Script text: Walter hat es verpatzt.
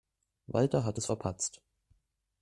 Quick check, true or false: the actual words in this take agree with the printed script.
true